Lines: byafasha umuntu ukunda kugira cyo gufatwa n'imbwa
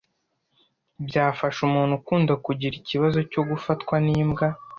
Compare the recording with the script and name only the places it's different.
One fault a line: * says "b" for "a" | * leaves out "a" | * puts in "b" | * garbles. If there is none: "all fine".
* puts in "ikibazo"